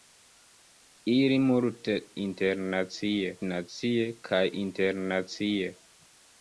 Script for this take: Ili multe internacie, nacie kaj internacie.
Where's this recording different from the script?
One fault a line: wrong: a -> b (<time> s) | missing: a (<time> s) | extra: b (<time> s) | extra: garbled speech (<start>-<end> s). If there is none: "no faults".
no faults